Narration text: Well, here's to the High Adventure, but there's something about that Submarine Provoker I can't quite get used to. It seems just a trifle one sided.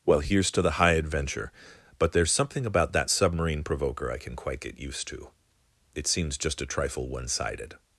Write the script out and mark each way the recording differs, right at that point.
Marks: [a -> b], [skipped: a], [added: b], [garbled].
Well, here's to the High Adventure, but there's something about that Submarine Provoker I [can't -> can] quite get used to. It seems just a trifle one sided.